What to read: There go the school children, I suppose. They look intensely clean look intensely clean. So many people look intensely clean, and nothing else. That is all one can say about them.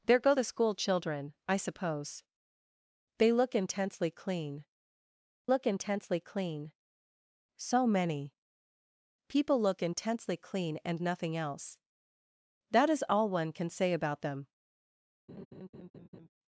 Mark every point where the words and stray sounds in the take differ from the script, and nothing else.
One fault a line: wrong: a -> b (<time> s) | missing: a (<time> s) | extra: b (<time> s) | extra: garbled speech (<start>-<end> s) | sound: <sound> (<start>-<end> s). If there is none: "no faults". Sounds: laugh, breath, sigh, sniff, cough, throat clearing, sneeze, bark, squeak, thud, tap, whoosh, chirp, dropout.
sound: laugh (15.3-16.3 s)